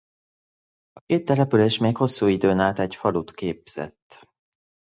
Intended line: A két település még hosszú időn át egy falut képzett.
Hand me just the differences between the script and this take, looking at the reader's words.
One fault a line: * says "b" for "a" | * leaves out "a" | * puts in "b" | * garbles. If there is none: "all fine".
all fine